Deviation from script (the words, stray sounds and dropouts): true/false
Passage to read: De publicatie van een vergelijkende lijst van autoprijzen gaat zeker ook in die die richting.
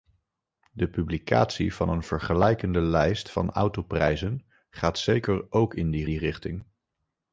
false